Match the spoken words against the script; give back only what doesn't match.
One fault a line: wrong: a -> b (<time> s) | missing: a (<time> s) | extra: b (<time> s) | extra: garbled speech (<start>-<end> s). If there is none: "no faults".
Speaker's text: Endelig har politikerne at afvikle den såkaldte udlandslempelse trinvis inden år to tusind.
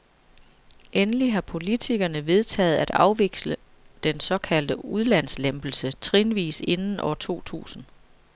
extra: vedtaget (2.2 s)